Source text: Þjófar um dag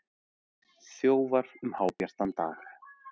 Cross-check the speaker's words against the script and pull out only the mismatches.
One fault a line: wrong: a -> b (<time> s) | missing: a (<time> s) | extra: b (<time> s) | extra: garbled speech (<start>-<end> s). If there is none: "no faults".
extra: hábjartan (1.8 s)